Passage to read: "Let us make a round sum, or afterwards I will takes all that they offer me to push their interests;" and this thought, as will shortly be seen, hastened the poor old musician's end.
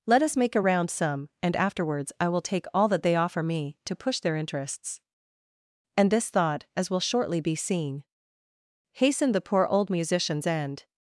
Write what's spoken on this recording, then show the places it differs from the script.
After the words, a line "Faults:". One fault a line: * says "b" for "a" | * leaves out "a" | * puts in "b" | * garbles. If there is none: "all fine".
"Let us make a round sum, and afterwards I will take all that they offer me to push their interests;" and this thought, as will shortly be seen, hastened the poor old musician's end.
Faults:
* says "and" for "or"
* says "take" for "takes"